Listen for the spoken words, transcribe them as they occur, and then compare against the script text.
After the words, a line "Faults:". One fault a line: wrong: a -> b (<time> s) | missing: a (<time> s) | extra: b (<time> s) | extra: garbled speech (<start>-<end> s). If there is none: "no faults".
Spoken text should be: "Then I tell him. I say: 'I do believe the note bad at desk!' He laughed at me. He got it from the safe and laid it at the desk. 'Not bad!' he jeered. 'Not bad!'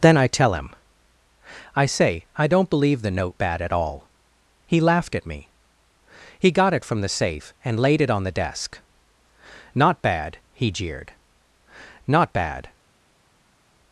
"Then I tell him. I say: 'I don't believe the note bad at all!' He laughed at me. He got it from the safe and laid it on the desk. 'Not bad!' he jeered. 'Not bad!'
Faults:
wrong: do -> don't (2.5 s)
wrong: desk -> all (3.7 s)
wrong: at -> on (8.1 s)